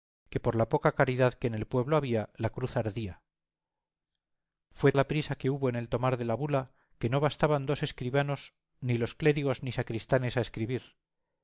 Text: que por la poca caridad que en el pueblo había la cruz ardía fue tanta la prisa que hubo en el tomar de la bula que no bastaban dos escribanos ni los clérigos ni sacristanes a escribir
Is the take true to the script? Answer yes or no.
no